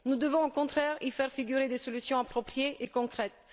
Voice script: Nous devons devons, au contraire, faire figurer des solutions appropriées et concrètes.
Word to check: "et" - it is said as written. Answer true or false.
true